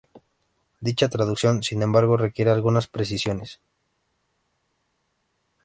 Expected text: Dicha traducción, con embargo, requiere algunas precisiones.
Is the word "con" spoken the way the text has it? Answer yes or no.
no